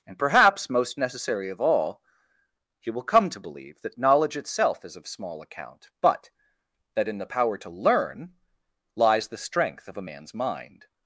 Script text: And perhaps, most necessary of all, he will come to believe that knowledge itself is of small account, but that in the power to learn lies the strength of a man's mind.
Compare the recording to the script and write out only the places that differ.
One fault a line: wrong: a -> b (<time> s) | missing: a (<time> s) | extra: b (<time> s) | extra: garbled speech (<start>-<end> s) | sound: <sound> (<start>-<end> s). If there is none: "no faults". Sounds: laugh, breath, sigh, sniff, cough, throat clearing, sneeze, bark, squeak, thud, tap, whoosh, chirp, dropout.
no faults